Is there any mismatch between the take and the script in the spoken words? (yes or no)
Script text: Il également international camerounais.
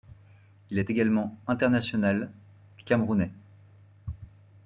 yes